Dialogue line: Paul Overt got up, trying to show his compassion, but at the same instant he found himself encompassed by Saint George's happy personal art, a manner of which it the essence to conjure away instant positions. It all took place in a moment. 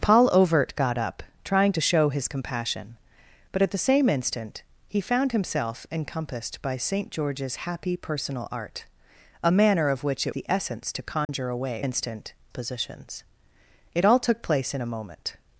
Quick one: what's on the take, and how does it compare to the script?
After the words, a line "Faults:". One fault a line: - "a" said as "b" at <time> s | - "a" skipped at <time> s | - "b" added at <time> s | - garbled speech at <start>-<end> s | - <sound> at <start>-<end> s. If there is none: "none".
Paul Overt got up, trying to show his compassion, but at the same instant he found himself encompassed by Saint George's happy personal art, a manner of which it the essence to conjure away instant positions. It all took place in a moment.
Faults:
- dropout at 11.2-11.3 s